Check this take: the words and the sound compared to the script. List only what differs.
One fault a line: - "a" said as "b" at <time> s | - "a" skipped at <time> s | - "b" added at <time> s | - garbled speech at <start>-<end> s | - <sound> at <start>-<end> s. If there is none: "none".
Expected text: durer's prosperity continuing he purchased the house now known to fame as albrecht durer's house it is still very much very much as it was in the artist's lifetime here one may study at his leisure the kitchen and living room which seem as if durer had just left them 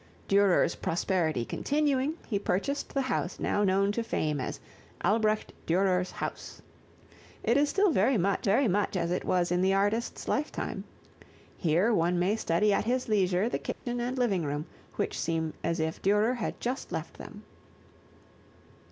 - dropout at 13.7-13.9 s